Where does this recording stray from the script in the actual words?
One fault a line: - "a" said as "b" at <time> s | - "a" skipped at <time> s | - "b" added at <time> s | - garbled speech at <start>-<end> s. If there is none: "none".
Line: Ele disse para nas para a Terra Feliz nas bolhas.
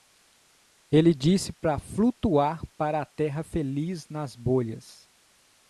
- "nas" said as "flutuar" at 1.8 s